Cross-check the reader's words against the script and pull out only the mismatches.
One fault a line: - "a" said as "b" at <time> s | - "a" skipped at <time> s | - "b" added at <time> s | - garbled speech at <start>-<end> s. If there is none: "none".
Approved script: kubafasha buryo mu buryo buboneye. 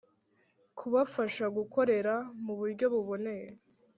- "buryo" said as "gukorera" at 1.6 s